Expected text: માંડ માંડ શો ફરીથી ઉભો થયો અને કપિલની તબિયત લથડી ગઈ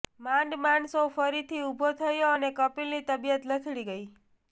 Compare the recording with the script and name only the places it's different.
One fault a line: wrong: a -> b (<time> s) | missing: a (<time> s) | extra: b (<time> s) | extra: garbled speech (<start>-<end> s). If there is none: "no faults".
no faults